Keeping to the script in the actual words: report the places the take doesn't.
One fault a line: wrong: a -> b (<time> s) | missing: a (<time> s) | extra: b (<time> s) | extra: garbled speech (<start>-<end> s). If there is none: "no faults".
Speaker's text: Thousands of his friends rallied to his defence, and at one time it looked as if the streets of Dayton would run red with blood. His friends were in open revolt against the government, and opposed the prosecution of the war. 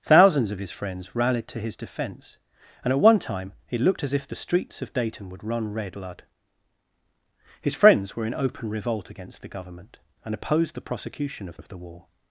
missing: with (6.0 s)
extra: of (11.6 s)